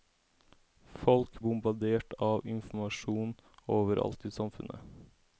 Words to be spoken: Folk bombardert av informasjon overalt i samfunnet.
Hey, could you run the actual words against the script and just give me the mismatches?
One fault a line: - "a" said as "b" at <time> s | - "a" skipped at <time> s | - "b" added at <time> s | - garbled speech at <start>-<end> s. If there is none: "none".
none